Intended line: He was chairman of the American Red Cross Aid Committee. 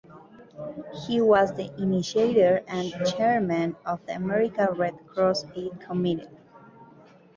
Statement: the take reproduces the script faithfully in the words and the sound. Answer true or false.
false